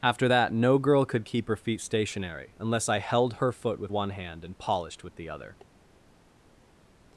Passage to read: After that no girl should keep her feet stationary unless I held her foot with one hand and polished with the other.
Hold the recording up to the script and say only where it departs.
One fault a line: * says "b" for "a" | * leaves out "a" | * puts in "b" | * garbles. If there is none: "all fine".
* says "could" for "should"